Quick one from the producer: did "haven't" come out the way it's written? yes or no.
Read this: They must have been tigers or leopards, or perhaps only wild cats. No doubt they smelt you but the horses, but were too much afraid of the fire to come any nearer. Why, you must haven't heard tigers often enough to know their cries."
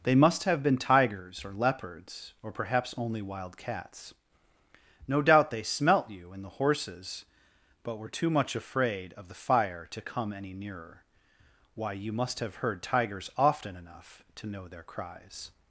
no